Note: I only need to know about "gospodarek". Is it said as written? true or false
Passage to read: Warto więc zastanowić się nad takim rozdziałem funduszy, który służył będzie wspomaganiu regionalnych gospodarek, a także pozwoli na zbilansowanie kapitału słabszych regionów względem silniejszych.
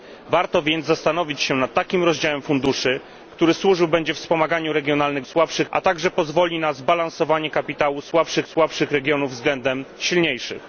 false